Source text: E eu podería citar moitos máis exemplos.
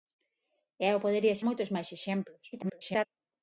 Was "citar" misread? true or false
true